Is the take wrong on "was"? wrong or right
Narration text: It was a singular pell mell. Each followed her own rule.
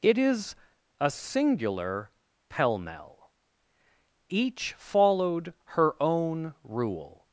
wrong